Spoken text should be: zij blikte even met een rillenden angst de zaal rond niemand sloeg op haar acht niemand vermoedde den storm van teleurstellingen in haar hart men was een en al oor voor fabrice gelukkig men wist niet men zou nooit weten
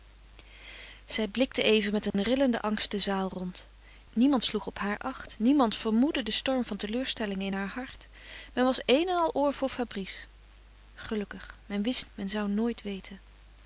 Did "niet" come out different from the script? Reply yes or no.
yes